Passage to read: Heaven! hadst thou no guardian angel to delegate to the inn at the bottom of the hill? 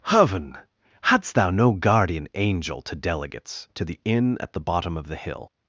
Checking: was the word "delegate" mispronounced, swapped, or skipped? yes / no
yes